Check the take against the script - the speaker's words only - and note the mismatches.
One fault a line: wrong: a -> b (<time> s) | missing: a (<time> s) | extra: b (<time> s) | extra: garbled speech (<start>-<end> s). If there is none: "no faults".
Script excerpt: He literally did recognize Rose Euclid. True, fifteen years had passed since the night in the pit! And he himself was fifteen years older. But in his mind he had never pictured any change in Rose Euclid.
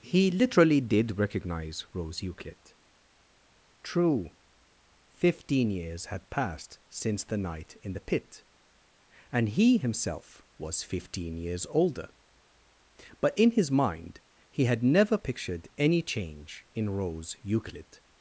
no faults